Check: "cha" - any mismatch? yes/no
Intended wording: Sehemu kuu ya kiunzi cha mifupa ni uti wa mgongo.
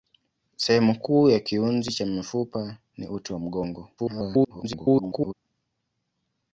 no